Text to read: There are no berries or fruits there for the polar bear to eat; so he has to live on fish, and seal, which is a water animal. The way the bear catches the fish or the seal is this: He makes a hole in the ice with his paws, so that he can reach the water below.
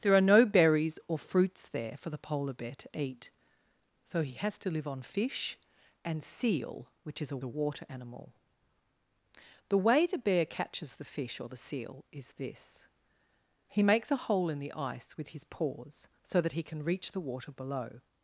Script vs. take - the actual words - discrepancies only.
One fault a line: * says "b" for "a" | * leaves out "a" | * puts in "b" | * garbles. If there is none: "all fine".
* puts in "a"